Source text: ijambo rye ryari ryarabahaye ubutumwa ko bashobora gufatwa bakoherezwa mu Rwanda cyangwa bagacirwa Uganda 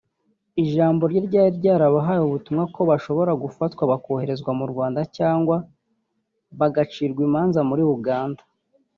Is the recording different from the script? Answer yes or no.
yes